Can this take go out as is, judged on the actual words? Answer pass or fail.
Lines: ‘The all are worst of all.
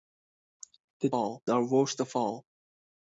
pass